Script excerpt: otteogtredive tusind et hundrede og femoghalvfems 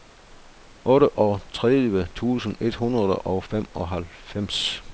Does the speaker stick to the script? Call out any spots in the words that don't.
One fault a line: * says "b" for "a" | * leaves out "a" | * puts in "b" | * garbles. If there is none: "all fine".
all fine